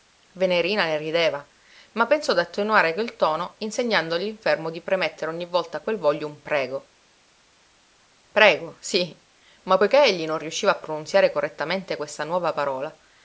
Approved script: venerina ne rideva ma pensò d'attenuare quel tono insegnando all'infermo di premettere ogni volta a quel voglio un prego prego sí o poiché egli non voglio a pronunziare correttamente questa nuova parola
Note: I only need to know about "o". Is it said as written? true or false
false